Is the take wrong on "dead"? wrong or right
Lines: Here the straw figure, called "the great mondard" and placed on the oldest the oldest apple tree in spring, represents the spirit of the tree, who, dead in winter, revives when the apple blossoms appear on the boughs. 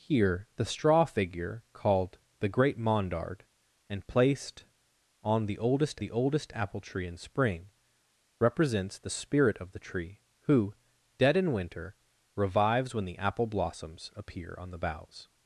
right